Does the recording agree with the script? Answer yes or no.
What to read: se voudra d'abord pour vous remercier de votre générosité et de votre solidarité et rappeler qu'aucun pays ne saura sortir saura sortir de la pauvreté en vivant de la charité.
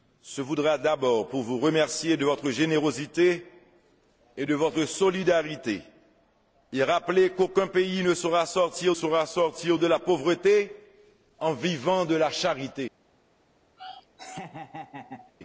yes